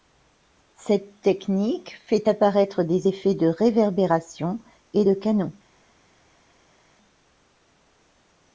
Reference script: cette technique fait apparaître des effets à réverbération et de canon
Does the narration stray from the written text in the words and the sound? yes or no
yes